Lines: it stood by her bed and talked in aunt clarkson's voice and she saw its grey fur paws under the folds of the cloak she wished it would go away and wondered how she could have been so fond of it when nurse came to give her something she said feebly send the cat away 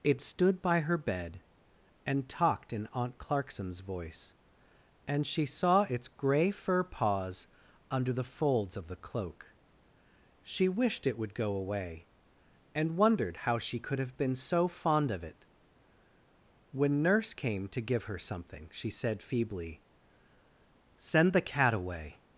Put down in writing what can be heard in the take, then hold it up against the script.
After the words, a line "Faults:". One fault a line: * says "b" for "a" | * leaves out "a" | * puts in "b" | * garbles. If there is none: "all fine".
it stood by her bed and talked in aunt clarkson's voice and she saw its grey fur paws under the folds of the cloak she wished it would go away and wondered how she could have been so fond of it when nurse came to give her something she said feebly send the cat away
Faults:
all fine